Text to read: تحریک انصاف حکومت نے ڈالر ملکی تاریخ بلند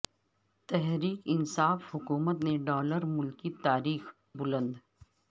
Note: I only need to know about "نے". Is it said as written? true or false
true